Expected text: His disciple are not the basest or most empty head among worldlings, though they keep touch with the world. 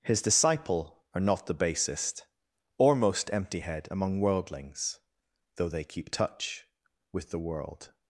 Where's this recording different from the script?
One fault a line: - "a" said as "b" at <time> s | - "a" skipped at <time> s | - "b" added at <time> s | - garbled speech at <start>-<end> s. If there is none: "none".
none